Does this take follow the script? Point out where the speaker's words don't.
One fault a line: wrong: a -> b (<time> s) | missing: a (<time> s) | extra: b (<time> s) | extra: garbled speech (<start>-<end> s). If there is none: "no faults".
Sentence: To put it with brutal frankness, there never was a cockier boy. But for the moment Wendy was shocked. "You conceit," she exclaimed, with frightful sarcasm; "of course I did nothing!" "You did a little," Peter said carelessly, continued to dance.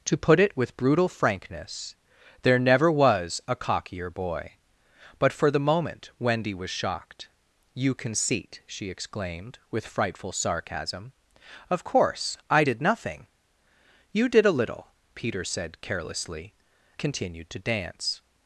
no faults